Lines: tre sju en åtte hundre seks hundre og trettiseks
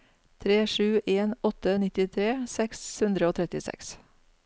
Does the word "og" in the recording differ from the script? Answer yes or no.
no